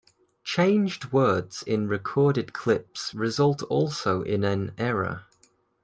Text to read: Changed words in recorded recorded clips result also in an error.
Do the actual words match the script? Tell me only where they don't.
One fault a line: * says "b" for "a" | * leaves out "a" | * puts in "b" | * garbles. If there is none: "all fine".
* leaves out "recorded"